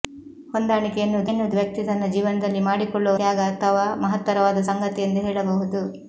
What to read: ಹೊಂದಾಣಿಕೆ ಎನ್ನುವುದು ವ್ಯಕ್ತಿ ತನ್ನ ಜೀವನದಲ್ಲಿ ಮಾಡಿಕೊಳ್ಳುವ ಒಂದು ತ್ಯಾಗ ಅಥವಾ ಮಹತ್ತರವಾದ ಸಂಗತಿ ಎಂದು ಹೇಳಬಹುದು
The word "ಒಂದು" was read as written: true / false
false